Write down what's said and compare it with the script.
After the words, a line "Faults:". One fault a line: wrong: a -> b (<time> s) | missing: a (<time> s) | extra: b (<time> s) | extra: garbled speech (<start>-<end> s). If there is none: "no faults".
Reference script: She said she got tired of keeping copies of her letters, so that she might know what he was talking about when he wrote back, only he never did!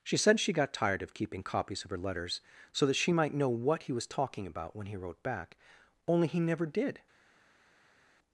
She said she got tired of keeping copies of her letters, so that she might know what he was talking about when he wrote back, only he never did!
Faults:
no faults